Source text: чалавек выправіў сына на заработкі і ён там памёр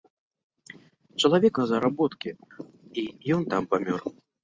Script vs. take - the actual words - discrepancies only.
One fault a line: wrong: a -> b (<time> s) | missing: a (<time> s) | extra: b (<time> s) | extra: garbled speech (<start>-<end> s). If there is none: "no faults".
missing: выправіў сына (1.5 s)